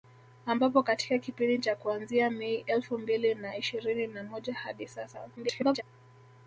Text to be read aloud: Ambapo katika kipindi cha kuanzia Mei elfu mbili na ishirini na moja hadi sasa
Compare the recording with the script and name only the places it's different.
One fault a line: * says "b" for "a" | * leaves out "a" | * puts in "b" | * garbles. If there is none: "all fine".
* garbles